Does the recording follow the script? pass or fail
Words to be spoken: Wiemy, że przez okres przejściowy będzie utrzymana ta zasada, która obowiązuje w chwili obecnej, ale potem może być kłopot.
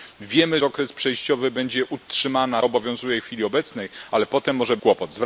fail